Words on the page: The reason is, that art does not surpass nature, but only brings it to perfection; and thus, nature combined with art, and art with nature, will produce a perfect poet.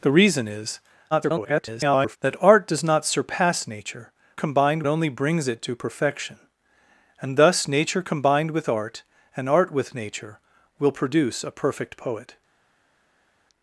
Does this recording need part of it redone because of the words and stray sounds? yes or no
yes